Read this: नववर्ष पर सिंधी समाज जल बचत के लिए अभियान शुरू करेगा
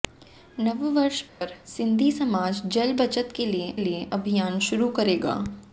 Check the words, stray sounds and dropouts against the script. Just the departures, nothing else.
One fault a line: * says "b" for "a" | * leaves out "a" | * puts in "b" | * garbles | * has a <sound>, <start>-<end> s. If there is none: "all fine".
* has a dropout, 1.3-1.4 s
* puts in "लिए"